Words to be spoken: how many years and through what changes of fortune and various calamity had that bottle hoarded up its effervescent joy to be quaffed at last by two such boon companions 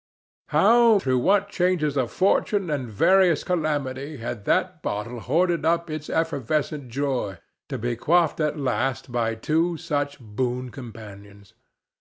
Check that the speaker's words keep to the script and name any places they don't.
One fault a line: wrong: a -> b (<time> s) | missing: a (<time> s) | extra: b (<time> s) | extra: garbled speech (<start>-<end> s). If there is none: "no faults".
missing: many years and (1.0 s)